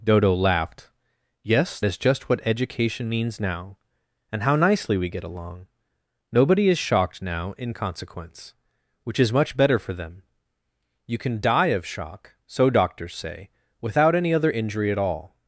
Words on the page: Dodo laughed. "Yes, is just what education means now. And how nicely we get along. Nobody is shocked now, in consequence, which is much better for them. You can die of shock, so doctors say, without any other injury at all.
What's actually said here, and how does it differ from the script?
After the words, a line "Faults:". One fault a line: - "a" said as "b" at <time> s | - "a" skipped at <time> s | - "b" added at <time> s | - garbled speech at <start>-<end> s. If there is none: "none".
Dodo laughed. "Yes, is just what education means now. And how nicely we get along. Nobody is shocked now, in consequence, which is much better for them. You can die of shock, so doctors say, without any other injury at all.
Faults:
none